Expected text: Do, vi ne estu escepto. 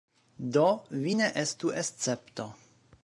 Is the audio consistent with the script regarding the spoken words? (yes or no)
yes